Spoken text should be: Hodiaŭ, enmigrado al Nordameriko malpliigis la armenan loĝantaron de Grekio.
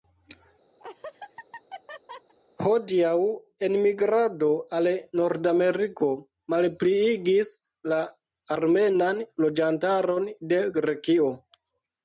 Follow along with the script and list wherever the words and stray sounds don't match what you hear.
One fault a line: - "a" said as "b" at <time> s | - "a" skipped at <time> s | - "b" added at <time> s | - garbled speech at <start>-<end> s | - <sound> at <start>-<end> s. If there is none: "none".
- laugh at 0.8-2.3 s